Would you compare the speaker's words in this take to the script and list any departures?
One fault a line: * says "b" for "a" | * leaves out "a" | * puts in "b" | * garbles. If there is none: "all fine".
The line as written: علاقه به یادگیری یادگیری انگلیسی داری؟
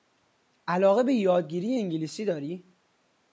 * leaves out "یادگیری"